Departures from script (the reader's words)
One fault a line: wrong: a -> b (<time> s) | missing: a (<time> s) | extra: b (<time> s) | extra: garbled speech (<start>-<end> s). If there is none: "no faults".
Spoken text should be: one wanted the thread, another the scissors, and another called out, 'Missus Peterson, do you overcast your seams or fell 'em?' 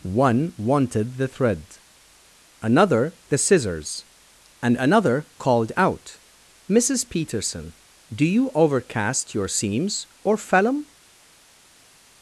no faults